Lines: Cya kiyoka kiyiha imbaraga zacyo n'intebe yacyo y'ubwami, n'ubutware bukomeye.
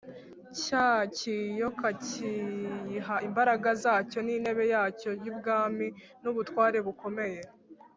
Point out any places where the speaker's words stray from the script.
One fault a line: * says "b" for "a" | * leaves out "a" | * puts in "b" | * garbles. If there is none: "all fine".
all fine